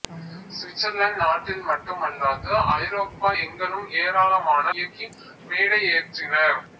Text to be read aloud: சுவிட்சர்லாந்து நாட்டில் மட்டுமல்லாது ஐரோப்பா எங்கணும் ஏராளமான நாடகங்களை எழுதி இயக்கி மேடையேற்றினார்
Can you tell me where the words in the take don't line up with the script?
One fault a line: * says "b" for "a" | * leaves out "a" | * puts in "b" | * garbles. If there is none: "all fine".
* leaves out "நாடகங்களை எழுதி"